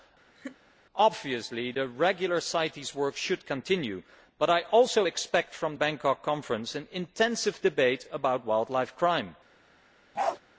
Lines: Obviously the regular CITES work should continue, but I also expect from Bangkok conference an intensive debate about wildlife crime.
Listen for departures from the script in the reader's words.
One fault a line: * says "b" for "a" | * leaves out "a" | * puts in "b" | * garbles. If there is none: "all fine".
all fine